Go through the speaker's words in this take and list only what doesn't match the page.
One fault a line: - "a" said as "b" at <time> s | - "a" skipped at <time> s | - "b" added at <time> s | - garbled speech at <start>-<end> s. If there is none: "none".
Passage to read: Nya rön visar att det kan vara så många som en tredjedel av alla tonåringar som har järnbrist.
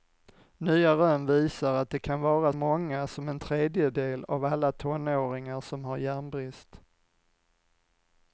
- "så" skipped at 2.5 s